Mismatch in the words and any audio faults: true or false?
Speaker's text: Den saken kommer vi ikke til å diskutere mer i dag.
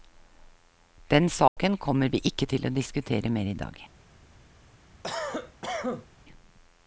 true